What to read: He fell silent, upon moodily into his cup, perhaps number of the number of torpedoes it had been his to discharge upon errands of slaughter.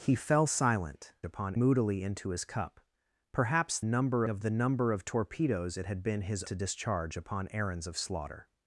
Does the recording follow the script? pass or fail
pass